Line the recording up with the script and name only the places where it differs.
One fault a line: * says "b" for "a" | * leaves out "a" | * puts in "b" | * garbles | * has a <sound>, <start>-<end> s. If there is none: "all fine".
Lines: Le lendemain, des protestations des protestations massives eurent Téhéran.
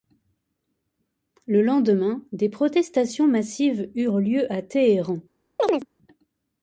* says "massives eurent lieu à" for "des protestations massives eurent"
* has a chirp, 5.6-5.9 s